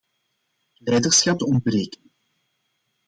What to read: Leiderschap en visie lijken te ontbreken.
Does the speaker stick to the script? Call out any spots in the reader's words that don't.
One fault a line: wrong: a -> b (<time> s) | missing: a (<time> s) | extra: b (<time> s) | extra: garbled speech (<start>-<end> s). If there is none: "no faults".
missing: en visie lijken (1.4 s)